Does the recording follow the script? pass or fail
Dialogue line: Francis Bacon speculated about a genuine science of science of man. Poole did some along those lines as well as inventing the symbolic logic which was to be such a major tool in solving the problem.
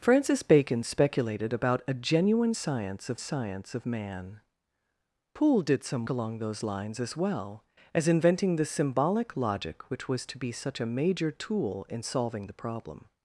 pass